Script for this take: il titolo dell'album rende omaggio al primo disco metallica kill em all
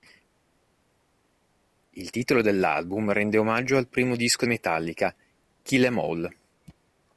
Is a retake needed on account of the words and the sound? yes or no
no